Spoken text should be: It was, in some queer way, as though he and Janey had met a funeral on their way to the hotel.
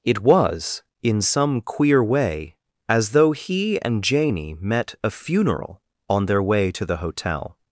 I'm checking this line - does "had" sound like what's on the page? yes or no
no